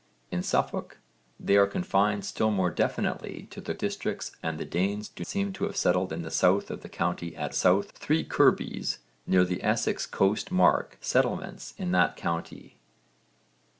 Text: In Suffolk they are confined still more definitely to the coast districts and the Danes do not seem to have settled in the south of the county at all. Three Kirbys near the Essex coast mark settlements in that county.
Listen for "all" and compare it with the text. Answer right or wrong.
wrong